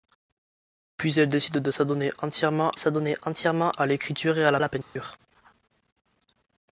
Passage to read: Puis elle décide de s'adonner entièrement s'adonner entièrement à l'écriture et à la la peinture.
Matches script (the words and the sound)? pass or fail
fail